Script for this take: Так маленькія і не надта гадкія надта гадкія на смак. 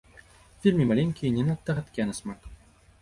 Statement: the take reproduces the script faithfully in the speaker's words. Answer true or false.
false